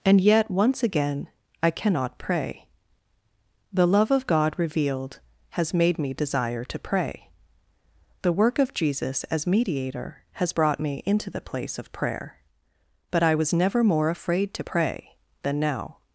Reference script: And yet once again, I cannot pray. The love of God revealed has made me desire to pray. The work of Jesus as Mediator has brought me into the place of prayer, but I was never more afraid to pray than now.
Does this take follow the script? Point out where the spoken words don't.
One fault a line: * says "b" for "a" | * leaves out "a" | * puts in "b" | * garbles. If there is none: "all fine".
all fine